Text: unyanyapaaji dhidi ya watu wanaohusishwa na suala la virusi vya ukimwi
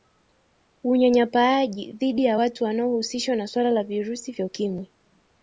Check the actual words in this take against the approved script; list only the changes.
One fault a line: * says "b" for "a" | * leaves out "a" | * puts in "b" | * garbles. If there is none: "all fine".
all fine